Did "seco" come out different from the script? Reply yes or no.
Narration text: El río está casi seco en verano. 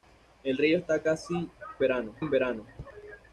yes